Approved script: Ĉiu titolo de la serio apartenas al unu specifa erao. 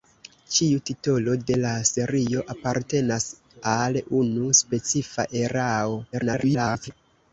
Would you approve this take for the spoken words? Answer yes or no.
no